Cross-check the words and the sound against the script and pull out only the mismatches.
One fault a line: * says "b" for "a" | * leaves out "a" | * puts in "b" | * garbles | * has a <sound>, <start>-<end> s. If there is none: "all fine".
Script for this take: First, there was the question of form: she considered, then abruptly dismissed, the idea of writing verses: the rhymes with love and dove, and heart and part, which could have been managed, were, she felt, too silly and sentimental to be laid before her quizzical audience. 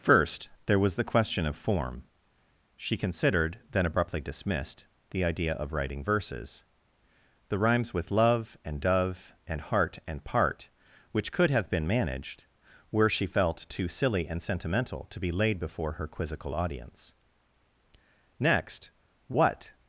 * puts in "Next what"